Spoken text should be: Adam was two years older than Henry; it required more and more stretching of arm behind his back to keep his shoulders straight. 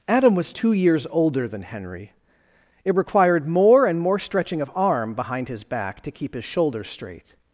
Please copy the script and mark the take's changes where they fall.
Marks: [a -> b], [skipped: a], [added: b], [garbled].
Adam was two years older than Henry; it required more and more stretching of arm behind his back to keep his shoulders straight.